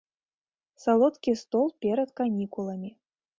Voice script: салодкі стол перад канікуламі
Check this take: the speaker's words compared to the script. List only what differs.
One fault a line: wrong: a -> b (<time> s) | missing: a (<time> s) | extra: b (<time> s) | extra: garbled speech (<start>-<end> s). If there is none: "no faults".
no faults